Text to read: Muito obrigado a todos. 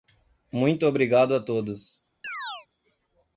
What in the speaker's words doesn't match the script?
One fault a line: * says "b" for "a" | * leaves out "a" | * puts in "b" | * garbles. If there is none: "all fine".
all fine